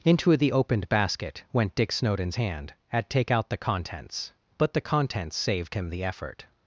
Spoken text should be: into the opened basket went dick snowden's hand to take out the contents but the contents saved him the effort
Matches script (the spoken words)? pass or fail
fail